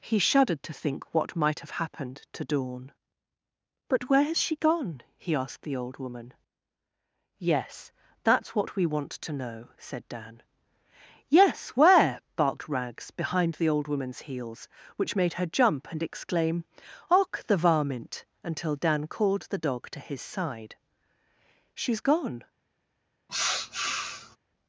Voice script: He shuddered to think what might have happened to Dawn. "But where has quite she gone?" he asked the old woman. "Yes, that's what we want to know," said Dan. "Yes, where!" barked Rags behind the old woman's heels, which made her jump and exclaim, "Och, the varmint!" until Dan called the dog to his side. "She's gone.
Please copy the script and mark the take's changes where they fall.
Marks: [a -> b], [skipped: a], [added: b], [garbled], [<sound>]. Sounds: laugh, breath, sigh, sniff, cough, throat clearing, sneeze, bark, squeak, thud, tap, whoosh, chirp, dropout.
He shuddered to think what might have happened to Dawn. "But where has [skipped: quite] she gone?" he asked the old woman. "Yes, that's what we want to know," said Dan. "Yes, where!" barked Rags behind the old woman's heels, which made her jump and exclaim, "Och, the varmint!" until Dan called the dog to his side. "She's gone. [sniff]